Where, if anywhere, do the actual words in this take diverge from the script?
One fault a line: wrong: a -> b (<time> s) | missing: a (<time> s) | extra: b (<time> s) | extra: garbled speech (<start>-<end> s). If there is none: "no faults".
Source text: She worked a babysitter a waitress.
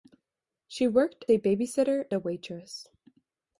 no faults